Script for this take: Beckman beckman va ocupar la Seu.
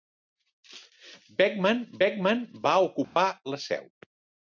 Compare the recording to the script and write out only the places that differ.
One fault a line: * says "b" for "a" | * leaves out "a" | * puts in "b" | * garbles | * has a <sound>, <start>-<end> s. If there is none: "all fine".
* has a dropout, 3.0-3.2 s